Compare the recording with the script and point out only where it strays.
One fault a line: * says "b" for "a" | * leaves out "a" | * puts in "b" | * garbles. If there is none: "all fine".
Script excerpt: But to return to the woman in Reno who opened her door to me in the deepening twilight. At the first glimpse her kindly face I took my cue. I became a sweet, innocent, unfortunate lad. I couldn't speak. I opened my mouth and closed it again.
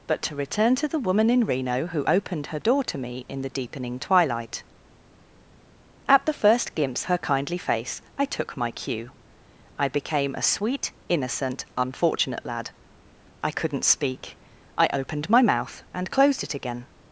all fine